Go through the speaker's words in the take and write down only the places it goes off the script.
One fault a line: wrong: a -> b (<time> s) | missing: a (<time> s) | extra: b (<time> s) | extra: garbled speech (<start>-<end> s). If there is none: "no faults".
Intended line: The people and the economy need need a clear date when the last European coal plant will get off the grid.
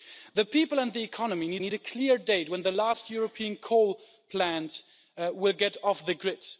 no faults